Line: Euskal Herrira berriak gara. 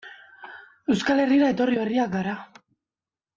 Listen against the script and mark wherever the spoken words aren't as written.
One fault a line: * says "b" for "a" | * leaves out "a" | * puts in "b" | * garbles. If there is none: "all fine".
* puts in "etorri"